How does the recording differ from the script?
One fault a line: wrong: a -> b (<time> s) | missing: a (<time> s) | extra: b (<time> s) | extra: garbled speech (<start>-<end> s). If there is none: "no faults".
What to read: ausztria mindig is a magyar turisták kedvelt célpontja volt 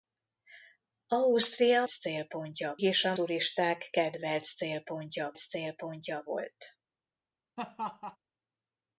wrong: mindig -> célpontja (1.9 s)
missing: magyar (3.1 s)
extra: célpontja (5.4 s)